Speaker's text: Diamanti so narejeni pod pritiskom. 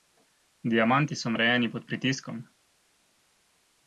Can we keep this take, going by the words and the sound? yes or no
yes